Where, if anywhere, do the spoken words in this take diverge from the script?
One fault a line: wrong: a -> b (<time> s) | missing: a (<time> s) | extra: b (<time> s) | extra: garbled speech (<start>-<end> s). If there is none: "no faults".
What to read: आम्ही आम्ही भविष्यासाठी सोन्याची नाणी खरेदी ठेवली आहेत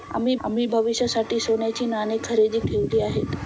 no faults